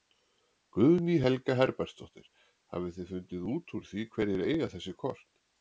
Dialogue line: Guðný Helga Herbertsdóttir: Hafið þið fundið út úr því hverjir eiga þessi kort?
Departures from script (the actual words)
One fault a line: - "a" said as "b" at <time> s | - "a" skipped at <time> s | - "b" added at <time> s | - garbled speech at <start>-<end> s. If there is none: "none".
none